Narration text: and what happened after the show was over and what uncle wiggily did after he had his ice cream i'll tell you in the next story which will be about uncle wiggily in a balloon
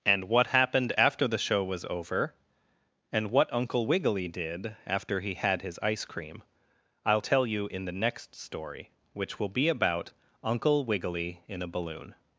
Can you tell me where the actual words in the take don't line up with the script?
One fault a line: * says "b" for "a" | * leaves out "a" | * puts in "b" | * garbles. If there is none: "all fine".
all fine